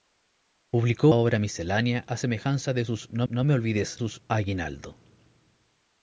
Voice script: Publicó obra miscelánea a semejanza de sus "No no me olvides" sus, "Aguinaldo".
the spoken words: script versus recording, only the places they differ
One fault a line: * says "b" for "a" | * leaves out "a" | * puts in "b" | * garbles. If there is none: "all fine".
all fine